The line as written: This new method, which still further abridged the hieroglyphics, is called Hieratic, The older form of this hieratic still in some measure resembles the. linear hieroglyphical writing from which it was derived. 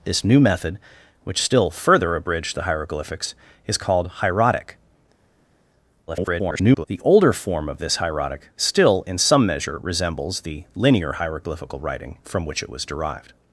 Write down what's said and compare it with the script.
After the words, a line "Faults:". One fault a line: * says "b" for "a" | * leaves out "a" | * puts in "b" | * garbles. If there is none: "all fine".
This new method, which still further abridged the hieroglyphics, is called Hieratic, [garbled] The older form of this hieratic still in some measure resembles the. linear hieroglyphical writing from which it was derived.
Faults:
* garbles